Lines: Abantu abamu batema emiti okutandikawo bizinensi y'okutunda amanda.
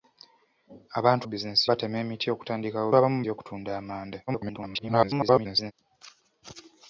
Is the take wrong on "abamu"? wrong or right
wrong